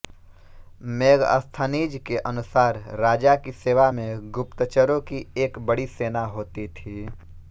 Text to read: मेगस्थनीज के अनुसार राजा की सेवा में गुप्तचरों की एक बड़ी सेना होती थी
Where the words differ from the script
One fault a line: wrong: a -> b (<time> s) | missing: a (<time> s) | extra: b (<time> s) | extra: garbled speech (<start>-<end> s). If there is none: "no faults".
no faults